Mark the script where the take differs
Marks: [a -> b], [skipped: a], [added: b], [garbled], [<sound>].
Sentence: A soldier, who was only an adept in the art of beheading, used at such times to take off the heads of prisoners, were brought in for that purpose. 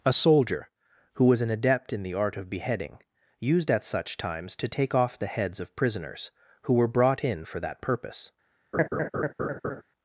A soldier, who was [skipped: only] an adept in the art of beheading, used at such times to take off the heads of prisoners, [added: who] were brought in for that purpose. [laugh]